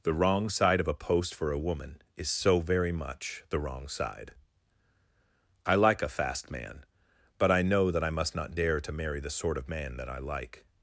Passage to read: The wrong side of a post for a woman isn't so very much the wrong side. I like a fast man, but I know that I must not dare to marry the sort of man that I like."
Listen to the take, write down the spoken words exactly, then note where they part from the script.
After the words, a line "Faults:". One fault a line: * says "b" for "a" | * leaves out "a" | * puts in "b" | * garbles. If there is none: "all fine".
The wrong side of a post for a woman is so very much the wrong side. I like a fast man, but I know that I must not dare to marry the sort of man that I like."
Faults:
* says "is" for "isn't"